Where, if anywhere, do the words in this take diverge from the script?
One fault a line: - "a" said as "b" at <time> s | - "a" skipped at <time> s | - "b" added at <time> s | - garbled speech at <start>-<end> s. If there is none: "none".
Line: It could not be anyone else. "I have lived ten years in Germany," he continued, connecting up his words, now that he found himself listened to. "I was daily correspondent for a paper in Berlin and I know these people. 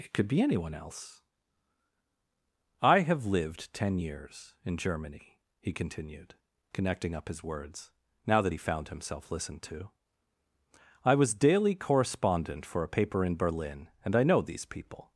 - "not" skipped at 0.3 s